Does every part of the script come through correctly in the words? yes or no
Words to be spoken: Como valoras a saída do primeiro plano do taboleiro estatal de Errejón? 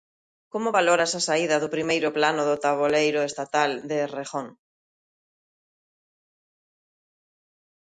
yes